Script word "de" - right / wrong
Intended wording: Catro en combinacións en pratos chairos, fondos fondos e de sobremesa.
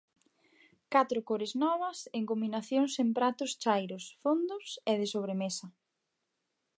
right